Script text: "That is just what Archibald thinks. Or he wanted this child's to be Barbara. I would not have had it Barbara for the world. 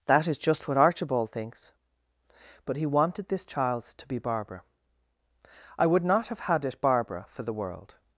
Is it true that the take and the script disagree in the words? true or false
true